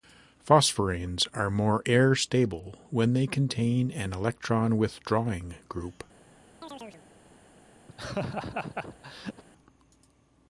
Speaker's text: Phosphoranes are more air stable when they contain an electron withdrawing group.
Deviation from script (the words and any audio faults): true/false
true